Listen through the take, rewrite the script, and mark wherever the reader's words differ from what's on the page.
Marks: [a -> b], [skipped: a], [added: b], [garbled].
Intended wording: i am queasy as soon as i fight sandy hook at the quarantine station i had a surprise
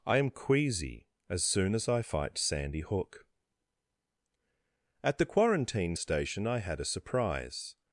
i am queasy as soon as i fight sandy hook at the quarantine station i had a surprise